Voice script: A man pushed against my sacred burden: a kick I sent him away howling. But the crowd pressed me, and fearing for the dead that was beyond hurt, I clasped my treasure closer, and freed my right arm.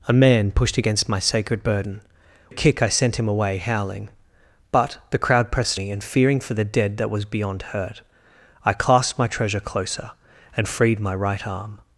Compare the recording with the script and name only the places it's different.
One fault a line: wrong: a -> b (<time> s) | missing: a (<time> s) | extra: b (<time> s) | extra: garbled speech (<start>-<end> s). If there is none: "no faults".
no faults